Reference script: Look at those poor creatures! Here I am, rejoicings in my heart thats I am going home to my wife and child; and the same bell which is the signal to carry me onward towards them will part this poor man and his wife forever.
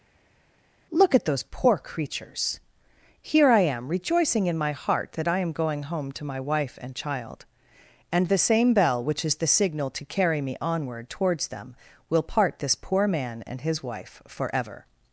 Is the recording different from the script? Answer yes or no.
yes